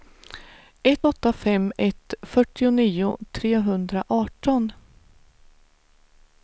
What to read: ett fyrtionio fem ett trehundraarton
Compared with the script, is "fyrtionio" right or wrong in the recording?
wrong